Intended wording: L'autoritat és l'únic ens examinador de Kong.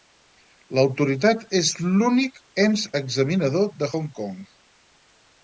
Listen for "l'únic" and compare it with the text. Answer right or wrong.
right